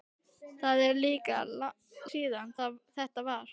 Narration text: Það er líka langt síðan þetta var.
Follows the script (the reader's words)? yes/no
no